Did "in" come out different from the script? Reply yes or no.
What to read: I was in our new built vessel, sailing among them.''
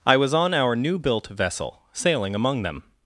yes